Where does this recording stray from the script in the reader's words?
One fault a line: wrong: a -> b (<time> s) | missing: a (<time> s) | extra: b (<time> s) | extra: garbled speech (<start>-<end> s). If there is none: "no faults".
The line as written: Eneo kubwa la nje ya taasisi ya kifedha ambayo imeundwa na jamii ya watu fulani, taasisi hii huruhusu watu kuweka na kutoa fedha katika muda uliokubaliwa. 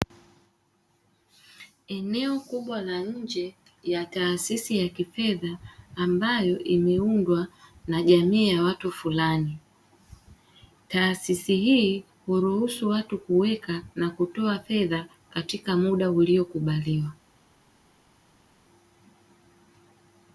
no faults